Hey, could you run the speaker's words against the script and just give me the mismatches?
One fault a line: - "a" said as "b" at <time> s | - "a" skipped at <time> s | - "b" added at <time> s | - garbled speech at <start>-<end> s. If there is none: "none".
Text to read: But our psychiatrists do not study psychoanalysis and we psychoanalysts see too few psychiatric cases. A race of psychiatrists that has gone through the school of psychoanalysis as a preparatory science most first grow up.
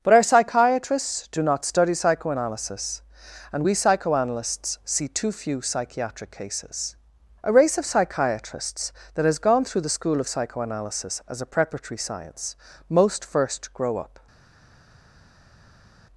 none